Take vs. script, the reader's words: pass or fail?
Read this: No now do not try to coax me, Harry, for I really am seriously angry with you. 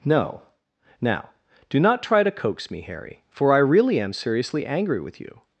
pass